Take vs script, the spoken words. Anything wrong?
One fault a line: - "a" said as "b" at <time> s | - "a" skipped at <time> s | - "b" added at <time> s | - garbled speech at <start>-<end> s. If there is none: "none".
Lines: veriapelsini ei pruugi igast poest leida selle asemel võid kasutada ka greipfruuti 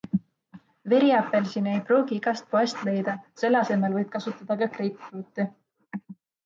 none